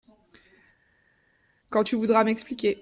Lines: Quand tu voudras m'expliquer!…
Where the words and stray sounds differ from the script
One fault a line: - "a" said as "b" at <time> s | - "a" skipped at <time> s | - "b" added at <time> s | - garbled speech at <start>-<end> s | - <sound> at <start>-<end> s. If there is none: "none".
none